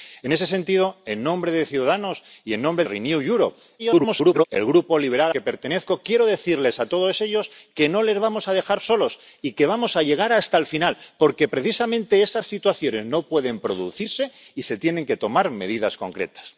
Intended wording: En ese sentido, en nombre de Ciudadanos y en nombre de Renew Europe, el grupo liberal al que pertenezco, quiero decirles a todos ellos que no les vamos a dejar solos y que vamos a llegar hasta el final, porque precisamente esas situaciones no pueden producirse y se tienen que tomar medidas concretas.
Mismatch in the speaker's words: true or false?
true